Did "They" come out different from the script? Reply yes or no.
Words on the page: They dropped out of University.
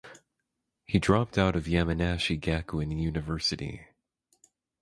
yes